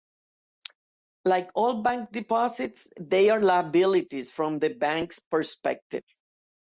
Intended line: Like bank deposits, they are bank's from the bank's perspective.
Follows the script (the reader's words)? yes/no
no